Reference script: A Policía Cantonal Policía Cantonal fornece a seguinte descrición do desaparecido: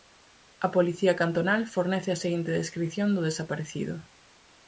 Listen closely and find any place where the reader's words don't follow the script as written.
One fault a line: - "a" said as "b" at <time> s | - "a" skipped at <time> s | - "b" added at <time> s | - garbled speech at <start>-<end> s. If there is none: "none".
- "Policía Cantonal" skipped at 1.6 s